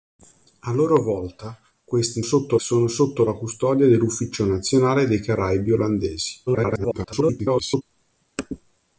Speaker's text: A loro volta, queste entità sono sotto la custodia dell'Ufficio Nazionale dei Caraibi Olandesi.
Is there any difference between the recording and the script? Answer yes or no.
yes